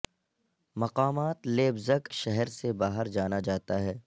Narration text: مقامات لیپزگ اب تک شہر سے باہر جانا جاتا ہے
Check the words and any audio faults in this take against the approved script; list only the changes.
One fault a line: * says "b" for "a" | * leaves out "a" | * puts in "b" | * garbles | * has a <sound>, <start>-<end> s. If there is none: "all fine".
* leaves out "اب تک"